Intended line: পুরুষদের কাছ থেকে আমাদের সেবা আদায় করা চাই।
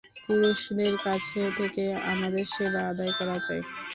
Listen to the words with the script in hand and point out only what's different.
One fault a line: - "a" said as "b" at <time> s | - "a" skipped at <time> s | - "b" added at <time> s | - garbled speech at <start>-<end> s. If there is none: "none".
none